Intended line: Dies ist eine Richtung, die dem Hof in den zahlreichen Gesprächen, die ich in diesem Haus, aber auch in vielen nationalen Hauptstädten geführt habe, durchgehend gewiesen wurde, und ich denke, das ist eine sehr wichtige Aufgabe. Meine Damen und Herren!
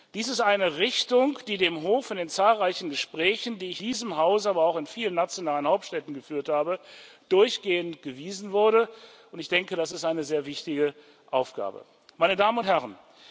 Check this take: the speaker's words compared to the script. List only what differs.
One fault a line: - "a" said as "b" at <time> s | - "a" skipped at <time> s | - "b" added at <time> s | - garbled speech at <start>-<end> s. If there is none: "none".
- "in" skipped at 3.8 s